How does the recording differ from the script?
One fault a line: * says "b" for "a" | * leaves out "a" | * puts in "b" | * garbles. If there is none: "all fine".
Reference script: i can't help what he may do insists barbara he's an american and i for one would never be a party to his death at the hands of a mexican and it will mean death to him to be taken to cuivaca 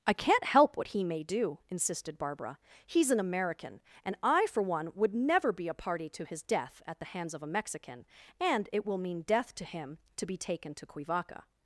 * says "insisted" for "insists"